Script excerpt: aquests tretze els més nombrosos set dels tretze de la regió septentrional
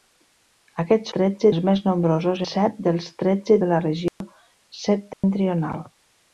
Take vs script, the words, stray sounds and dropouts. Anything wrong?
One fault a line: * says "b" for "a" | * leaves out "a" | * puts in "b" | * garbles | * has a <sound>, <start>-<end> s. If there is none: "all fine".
* has a dropout, 4.1-4.2 s
* has a dropout, 5.1-5.2 s